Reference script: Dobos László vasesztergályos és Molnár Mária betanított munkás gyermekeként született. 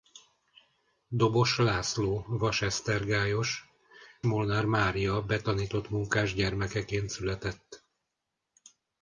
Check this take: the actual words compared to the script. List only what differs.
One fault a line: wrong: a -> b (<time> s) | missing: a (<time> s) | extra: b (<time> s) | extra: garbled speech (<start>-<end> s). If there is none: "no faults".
missing: és (3.6 s)